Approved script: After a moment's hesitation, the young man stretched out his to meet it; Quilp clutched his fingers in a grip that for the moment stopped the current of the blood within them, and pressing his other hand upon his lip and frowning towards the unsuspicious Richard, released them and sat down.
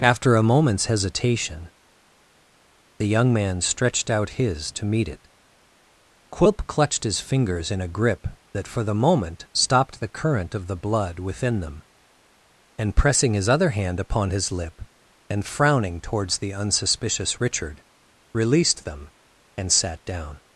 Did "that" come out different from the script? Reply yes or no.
no